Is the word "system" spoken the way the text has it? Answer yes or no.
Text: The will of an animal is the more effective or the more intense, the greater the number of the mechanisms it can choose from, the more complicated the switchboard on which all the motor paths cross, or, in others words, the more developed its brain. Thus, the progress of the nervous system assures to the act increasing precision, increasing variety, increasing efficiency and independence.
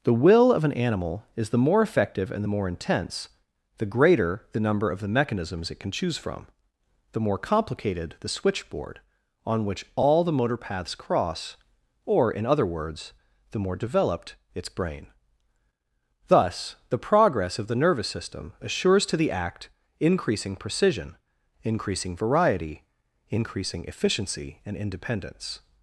yes